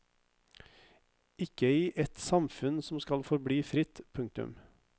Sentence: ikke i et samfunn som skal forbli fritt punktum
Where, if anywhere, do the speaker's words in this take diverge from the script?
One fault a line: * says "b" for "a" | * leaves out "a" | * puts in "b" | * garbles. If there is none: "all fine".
all fine